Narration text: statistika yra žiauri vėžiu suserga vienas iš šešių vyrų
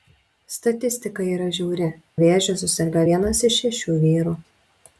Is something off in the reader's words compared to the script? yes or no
no